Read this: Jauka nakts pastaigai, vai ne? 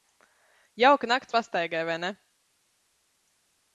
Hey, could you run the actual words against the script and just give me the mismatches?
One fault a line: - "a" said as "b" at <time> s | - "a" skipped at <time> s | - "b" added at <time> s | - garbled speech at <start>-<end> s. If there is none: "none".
none